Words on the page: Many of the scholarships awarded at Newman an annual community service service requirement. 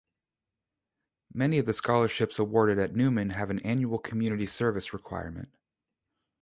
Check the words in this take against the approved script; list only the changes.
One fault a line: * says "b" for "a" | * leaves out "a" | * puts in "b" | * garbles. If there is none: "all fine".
* puts in "have"
* leaves out "service"